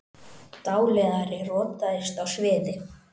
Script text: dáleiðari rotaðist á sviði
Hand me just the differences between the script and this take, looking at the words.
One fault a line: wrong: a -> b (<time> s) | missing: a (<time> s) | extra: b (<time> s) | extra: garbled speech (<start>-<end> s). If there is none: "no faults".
no faults